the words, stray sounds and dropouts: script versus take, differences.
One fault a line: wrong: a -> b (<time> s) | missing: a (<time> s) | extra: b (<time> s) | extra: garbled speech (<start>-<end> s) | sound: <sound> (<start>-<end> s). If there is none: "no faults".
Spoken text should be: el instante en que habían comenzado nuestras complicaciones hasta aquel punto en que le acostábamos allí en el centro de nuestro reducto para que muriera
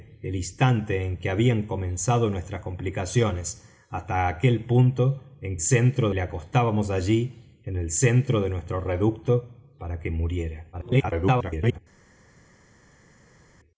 wrong: que -> centro (5.6 s)
extra: garbled speech (10.7-11.8 s)